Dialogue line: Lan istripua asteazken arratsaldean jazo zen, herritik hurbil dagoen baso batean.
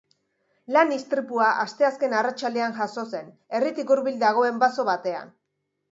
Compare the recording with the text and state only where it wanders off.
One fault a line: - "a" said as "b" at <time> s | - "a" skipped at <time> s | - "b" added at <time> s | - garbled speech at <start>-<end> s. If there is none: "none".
none